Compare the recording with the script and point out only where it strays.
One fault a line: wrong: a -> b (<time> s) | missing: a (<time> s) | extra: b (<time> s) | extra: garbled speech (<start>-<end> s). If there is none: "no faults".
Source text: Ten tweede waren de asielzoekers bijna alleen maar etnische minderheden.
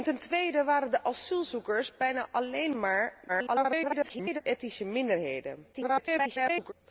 extra: garbled speech (3.3-4.4 s)
extra: garbled speech (5.7-6.7 s)